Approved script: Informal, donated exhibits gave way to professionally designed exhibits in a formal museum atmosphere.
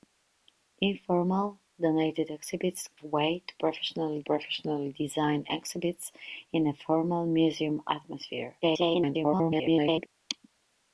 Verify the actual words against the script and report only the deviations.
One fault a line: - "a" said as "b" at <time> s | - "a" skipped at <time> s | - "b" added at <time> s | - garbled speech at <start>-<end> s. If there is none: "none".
- "gave" skipped at 2.9 s
- "professionally" added at 4.2 s
- garbled speech at 8.6-10.1 s